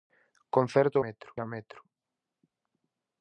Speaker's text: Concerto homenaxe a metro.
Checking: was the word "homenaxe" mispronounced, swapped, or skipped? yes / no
yes